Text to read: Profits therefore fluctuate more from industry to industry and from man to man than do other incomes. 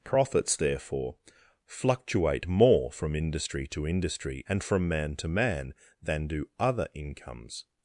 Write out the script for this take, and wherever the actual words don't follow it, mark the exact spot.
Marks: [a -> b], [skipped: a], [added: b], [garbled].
Profits therefore fluctuate more from industry to industry and from man to man than do other incomes.